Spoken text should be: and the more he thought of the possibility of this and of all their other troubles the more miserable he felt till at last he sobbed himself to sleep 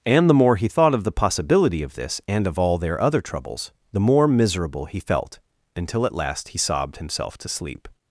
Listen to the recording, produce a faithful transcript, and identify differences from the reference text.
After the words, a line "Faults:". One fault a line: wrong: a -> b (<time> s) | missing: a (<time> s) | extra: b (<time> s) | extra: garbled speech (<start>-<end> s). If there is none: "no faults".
and the more he thought of the possibility of this and of all their other troubles the more miserable he felt until at last he sobbed himself to sleep
Faults:
wrong: till -> until (5.8 s)